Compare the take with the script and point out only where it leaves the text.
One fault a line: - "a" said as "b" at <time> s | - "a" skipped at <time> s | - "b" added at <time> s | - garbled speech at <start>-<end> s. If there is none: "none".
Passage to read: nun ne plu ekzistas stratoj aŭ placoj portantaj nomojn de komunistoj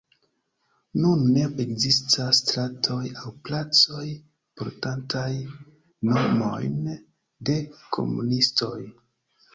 - "plu" skipped at 1.4 s